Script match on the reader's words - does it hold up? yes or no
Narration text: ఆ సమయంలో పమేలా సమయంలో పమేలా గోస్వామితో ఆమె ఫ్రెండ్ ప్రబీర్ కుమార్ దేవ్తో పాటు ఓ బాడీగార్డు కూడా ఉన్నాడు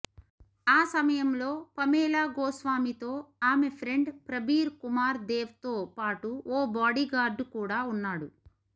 no